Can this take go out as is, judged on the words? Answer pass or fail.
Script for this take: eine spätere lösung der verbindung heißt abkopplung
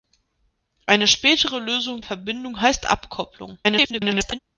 fail